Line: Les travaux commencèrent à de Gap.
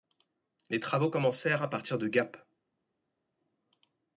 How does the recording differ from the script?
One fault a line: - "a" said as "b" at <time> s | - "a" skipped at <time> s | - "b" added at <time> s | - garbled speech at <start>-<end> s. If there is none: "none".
- "partir" added at 1.7 s